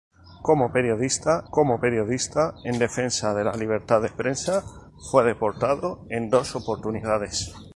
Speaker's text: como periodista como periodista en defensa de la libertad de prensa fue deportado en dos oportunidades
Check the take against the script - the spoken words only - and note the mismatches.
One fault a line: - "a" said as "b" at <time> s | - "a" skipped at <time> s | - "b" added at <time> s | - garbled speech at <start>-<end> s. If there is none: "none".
none